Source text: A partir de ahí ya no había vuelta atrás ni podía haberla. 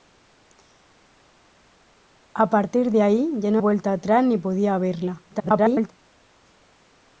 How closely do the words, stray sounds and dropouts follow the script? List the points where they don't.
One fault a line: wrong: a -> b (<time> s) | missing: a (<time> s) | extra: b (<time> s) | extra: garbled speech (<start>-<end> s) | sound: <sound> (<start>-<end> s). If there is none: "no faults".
missing: había (3.6 s)
extra: garbled speech (5.3-5.9 s)